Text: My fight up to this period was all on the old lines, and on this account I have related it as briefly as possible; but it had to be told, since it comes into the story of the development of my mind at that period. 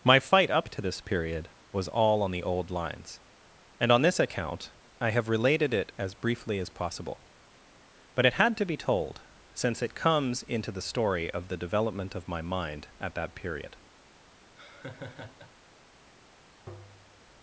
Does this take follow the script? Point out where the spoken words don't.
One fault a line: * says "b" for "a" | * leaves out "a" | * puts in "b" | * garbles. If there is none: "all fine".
all fine